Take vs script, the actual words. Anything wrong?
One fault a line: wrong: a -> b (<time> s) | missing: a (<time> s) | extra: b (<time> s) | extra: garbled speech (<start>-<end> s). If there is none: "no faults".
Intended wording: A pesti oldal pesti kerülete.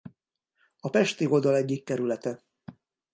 wrong: pesti -> egyik (1.6 s)